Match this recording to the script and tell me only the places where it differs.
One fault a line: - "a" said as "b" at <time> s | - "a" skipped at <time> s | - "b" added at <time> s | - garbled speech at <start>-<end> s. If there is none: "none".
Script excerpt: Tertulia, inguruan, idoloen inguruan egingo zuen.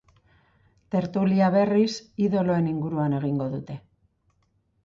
- "inguruan" said as "berriz" at 1.6 s
- "zuen" said as "dute" at 3.5 s